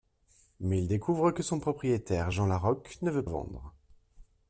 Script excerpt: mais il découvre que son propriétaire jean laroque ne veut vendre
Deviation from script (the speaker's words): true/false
false